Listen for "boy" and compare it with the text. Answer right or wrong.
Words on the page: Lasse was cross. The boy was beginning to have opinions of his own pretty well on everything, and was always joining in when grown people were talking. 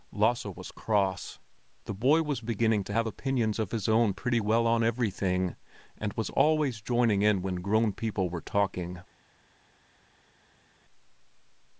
right